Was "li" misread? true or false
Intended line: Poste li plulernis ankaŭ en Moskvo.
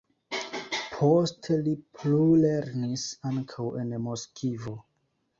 false